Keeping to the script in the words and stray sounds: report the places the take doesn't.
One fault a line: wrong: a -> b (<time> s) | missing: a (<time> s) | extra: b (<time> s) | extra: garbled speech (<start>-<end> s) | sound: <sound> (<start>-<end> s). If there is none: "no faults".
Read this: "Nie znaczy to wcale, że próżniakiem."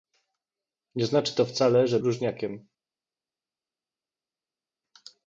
no faults